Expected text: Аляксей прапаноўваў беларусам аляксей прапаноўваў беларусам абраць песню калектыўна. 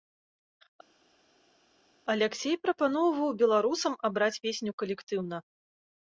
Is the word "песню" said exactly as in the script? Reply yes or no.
yes